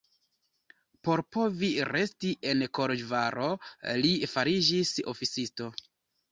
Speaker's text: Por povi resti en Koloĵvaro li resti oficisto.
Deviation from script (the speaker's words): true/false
true